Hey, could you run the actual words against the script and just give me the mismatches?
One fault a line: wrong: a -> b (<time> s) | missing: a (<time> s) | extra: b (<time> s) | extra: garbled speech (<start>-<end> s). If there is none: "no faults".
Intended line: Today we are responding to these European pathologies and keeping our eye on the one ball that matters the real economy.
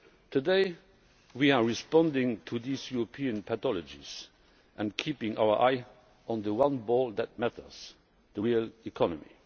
no faults